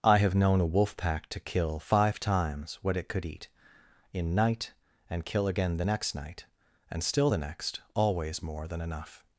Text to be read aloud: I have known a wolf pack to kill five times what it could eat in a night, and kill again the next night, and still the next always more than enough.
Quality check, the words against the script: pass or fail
fail